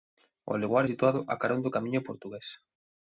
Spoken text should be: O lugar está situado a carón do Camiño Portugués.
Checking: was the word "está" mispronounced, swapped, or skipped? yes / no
yes